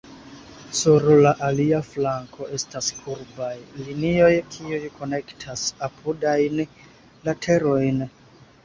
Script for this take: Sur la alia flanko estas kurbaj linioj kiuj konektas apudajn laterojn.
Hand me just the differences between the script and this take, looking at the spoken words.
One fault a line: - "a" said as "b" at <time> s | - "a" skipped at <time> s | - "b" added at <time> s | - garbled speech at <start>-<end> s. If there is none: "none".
none